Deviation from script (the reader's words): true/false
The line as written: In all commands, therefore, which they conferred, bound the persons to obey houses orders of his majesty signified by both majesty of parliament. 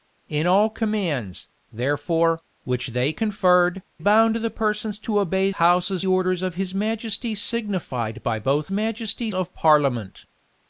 false